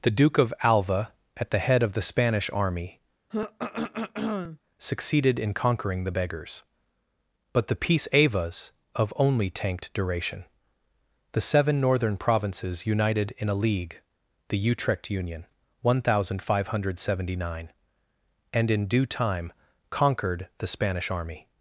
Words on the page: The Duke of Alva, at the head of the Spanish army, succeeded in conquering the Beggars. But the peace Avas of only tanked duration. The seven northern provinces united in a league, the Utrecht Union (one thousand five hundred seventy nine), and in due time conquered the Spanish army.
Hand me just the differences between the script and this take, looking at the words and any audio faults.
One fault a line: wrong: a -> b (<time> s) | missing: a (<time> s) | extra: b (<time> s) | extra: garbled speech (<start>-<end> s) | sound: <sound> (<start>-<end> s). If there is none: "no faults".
sound: throat clearing (3.3-4.6 s)